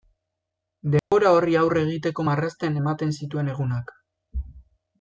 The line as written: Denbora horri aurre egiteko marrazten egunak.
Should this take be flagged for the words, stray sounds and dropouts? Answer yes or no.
yes